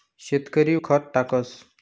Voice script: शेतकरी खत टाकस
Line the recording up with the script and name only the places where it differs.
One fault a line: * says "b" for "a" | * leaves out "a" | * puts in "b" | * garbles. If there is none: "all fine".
all fine